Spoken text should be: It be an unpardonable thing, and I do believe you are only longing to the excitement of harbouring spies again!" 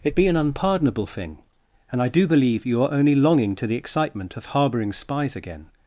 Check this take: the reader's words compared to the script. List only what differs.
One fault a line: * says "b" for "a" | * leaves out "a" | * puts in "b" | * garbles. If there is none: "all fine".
all fine